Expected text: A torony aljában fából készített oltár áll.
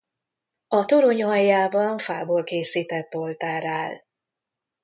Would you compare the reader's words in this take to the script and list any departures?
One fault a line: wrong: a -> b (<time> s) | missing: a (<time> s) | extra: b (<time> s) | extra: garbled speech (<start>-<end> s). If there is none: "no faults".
no faults